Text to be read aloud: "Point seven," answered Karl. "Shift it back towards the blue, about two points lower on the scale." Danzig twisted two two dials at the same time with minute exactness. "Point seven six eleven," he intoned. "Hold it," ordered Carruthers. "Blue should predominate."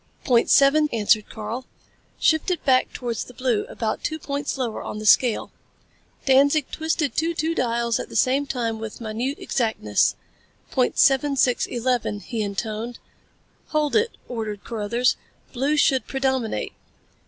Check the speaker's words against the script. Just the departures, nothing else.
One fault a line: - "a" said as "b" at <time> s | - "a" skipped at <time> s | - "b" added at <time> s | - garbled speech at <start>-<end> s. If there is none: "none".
none